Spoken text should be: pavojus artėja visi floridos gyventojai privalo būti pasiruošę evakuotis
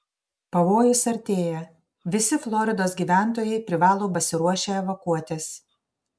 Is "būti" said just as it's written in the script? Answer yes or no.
no